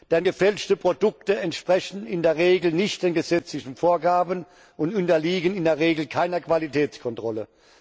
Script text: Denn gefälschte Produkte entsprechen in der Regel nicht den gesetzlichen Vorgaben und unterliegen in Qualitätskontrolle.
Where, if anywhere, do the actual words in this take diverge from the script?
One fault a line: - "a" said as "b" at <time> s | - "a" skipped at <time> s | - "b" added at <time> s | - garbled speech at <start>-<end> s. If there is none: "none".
- "der Regel keiner" added at 5.6 s